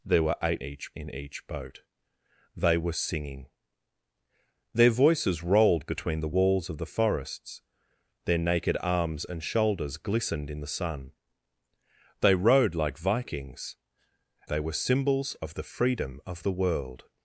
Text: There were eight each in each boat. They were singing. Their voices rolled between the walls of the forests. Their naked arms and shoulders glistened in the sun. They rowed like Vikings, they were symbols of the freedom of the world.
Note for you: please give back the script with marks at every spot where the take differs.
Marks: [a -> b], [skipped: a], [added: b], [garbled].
There were eight each in each boat. They were singing. Their voices rolled between the walls of the forests. Their naked arms and shoulders glistened in the sun. They rowed like Vikings, they were symbols of the freedom of the world.